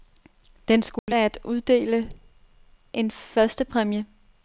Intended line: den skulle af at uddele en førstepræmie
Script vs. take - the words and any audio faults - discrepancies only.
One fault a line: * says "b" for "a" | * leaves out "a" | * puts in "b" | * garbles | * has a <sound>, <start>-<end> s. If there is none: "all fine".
* has a dropout, 1.0-1.1 s